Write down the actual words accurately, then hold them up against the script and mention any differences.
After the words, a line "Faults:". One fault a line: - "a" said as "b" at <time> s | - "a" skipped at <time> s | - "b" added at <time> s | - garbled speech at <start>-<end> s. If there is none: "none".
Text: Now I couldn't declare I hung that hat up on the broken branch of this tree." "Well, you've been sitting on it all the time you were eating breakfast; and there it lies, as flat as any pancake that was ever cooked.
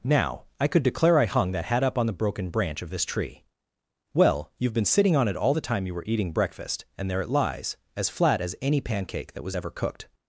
Now I could declare I hung that hat up on the broken branch of this tree." "Well, you've been sitting on it all the time you were eating breakfast; and there it lies, as flat as any pancake that was ever cooked.
Faults:
- "couldn't" said as "could" at 0.7 s